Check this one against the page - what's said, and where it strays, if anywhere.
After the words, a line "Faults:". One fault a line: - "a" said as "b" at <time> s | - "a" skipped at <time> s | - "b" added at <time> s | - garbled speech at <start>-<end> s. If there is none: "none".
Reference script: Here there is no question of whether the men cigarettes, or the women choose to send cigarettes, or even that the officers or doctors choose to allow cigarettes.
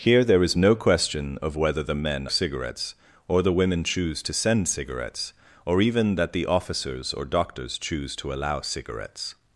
Here there is no question of whether the men cigarettes, or the women choose to send cigarettes, or even that the officers or doctors choose to allow cigarettes.
Faults:
none